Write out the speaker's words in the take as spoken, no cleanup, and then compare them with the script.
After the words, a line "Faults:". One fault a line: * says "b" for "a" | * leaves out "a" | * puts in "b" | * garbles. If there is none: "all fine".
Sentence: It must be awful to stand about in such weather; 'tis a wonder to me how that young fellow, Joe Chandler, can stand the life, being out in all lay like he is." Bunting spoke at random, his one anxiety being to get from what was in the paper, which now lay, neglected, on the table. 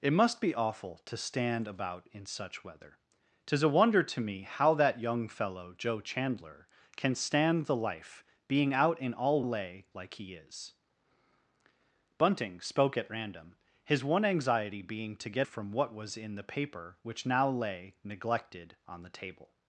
It must be awful to stand about in such weather; 'tis a wonder to me how that young fellow, Joe Chandler, can stand the life, being out in all lay like he is." Bunting spoke at random, his one anxiety being to get from what was in the paper, which now lay, neglected, on the table.
Faults:
all fine